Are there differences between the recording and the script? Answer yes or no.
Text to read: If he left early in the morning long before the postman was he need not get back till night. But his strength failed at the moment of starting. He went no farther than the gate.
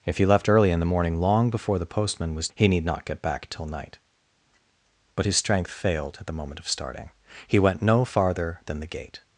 no